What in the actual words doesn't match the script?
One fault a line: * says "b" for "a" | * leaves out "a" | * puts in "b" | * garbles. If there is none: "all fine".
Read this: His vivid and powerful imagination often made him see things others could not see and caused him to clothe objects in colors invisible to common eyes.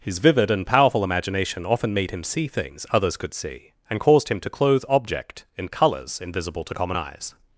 * leaves out "not"
* says "object" for "objects"